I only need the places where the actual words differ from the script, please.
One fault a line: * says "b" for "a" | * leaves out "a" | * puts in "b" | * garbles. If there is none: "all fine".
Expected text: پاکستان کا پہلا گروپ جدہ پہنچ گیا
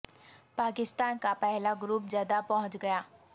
all fine